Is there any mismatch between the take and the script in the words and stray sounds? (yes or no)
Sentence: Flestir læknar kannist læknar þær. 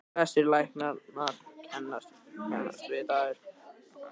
yes